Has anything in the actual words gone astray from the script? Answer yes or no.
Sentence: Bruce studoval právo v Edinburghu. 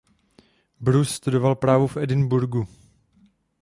no